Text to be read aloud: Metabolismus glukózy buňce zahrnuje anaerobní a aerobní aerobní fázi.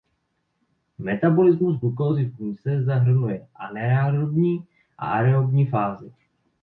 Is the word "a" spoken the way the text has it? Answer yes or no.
yes